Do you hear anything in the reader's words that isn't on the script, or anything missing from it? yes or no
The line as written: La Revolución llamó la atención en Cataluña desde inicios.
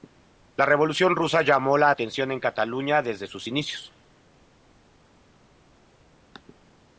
yes